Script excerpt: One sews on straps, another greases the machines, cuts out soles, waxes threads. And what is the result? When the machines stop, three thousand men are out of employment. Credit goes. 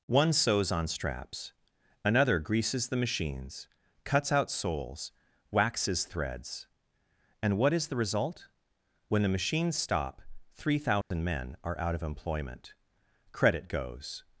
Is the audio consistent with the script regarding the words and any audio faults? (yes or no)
no